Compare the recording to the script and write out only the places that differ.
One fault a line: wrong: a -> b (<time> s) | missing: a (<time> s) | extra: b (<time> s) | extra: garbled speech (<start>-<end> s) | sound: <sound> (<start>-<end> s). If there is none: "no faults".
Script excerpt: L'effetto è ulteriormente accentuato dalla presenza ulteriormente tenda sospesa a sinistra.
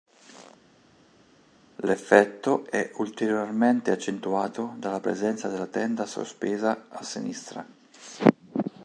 wrong: ulteriormente -> della (5.5 s)